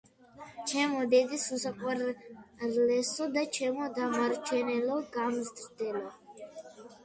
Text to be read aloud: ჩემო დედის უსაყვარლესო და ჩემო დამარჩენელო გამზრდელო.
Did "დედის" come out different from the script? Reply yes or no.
no